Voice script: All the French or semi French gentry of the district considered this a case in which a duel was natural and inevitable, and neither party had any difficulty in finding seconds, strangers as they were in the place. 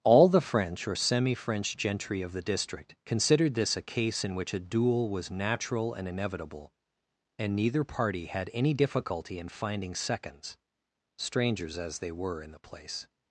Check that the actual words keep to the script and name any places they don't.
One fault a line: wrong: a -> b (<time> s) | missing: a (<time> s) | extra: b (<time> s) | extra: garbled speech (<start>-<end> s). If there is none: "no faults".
no faults